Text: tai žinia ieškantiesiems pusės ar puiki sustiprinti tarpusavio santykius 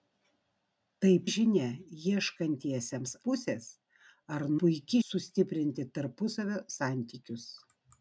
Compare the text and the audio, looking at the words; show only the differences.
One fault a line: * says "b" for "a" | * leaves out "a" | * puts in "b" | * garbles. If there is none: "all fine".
all fine